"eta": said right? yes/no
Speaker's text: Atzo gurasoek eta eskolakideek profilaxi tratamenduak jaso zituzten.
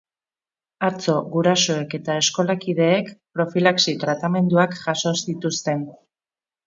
yes